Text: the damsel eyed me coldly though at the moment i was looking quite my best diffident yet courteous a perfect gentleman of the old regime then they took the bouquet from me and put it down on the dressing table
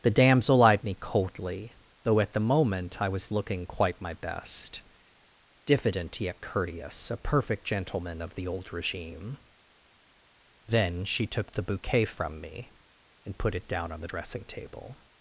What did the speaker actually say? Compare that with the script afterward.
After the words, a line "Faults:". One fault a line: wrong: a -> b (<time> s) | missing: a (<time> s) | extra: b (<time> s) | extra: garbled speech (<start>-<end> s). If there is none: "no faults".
the damsel eyed me coldly though at the moment i was looking quite my best diffident yet courteous a perfect gentleman of the old regime then she took the bouquet from me and put it down on the dressing table
Faults:
wrong: they -> she (11.0 s)